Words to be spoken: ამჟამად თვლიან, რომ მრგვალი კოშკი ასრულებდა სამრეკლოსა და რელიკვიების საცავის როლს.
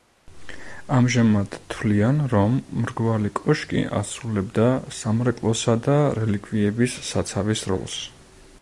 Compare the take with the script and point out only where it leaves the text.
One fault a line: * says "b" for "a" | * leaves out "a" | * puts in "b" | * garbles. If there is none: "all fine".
all fine